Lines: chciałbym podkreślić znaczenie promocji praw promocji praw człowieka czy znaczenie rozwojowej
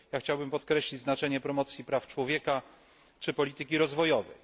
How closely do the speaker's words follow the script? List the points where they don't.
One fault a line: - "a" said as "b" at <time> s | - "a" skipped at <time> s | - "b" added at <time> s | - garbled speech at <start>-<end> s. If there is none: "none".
- "promocji praw" skipped at 2.1 s
- "znaczenie" said as "polityki" at 3.3 s